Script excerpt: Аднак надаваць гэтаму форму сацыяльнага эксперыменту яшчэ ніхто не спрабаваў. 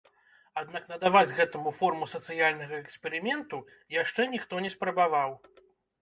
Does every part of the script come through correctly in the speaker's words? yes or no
yes